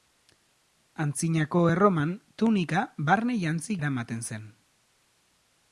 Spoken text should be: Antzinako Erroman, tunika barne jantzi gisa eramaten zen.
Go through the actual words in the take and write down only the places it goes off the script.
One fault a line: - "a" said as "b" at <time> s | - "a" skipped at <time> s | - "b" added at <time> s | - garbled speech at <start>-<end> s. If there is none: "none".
- "gisa" skipped at 3.8 s